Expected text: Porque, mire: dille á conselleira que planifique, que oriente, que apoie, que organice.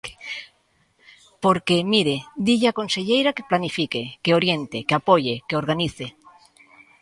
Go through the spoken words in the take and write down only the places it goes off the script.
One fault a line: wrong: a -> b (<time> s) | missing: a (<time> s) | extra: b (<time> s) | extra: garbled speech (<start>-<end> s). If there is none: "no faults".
no faults